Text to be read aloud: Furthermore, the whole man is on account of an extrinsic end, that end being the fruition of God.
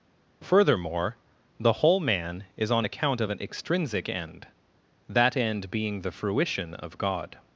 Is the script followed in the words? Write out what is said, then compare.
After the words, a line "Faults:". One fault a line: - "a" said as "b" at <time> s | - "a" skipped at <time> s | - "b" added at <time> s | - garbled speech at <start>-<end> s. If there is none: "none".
Furthermore, the whole man is on account of an extrinsic end, that end being the fruition of God.
Faults:
none